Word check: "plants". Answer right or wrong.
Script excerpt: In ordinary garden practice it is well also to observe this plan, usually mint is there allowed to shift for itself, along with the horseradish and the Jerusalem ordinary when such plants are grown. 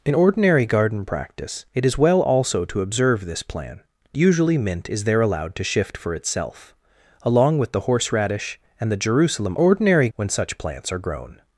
right